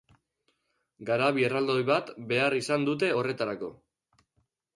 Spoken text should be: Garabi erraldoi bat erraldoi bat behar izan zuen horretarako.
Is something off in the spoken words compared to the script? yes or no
yes